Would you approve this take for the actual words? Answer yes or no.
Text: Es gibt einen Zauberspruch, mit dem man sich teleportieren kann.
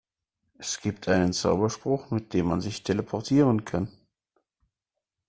yes